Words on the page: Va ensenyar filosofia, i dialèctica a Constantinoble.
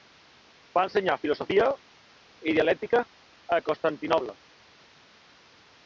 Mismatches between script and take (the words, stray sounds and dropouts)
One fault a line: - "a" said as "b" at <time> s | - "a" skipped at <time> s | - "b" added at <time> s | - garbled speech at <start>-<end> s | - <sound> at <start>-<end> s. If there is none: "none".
none